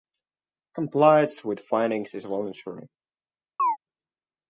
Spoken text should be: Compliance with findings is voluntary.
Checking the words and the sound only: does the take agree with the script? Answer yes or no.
no